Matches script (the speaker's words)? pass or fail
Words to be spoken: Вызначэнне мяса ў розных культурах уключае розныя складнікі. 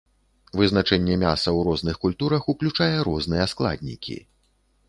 pass